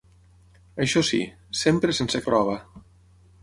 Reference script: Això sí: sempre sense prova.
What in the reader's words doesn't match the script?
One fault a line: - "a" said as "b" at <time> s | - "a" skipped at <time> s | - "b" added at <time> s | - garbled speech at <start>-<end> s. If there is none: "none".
none